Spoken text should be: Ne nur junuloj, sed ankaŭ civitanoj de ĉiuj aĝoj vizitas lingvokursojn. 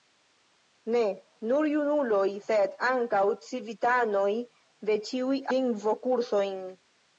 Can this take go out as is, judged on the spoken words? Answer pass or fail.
fail